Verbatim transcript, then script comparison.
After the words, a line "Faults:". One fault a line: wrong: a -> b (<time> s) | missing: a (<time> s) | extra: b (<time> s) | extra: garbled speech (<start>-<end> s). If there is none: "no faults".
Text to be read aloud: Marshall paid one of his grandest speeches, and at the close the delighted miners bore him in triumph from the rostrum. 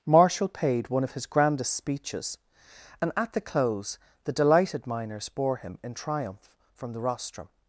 Marshall paid one of his grandest speeches, and at the close the delighted miners bore him in triumph from the rostrum.
Faults:
no faults